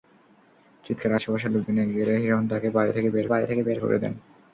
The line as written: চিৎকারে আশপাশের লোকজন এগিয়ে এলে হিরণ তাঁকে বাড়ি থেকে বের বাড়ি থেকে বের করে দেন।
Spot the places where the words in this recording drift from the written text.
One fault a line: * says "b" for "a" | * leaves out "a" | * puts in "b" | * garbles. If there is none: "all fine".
all fine